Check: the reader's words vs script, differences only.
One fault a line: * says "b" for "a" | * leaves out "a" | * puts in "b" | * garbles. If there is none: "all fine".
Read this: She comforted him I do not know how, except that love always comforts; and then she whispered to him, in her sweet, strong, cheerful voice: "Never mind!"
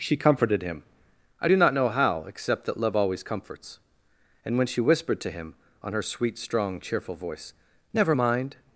* says "when" for "then"
* says "on" for "in"